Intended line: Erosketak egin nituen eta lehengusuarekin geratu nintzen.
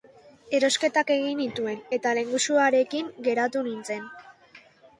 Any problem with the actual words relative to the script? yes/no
no